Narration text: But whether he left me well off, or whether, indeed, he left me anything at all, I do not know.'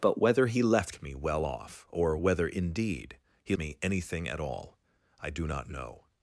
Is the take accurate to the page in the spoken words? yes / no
no